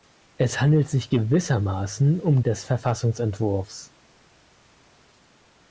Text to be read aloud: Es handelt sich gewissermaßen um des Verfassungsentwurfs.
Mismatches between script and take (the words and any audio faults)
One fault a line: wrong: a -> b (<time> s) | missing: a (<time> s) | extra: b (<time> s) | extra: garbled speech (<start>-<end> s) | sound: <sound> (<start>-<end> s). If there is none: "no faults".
no faults